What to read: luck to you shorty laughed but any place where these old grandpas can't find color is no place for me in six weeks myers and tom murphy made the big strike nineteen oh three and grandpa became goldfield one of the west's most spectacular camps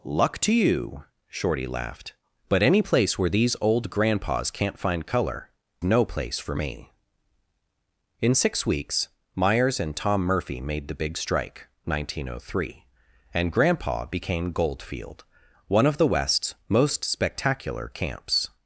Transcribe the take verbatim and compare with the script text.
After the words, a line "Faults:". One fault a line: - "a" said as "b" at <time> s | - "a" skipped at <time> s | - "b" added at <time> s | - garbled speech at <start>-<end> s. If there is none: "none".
luck to you shorty laughed but any place where these old grandpas can't find color no place for me in six weeks myers and tom murphy made the big strike nineteen oh three and grandpa became goldfield one of the west's most spectacular camps
Faults:
- "is" skipped at 5.5 s